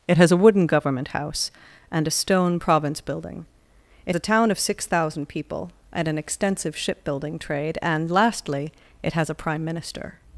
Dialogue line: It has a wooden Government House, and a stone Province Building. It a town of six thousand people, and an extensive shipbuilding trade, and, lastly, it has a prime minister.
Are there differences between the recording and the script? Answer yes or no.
no